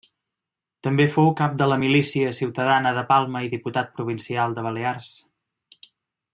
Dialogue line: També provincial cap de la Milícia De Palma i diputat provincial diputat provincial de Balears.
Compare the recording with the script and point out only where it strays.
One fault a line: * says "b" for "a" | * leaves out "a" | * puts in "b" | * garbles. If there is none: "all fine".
* says "fou" for "provincial"
* puts in "Ciutadana"
* leaves out "diputat provincial"